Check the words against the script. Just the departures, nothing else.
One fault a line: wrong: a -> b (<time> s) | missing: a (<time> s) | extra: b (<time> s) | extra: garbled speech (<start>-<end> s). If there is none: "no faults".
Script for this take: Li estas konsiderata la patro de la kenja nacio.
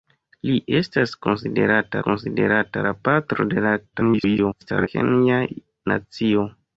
extra: konsiderata (2.1 s)
extra: garbled speech (3.9-4.9 s)